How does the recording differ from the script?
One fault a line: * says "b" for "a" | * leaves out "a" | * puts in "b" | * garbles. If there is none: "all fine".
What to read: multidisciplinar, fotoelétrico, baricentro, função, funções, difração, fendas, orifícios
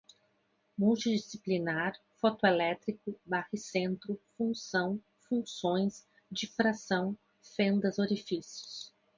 all fine